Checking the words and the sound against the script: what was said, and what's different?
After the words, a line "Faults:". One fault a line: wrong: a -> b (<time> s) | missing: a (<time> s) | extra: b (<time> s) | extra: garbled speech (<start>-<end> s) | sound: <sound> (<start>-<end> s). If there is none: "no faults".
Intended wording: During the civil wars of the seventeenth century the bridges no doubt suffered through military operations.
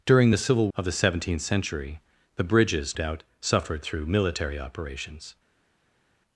During the civil of the seventeenth century the bridges doubt suffered through military operations.
Faults:
missing: wars (0.7 s)
missing: no (3.0 s)